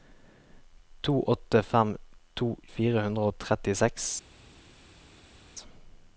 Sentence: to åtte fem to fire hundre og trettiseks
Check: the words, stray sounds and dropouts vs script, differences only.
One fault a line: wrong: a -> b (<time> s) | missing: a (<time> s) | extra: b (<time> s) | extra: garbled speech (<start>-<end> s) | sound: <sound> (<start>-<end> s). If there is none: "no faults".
no faults